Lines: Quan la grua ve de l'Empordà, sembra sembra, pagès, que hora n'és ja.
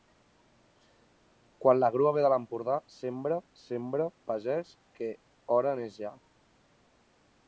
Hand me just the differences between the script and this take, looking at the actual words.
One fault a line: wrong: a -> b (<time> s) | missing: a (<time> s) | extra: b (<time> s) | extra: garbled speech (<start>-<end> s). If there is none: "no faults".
no faults